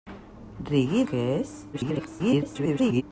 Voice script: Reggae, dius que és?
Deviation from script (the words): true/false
true